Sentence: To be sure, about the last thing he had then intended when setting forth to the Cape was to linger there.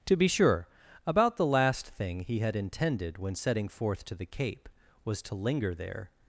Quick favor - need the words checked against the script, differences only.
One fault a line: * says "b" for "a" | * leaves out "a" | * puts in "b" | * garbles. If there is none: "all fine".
* leaves out "then"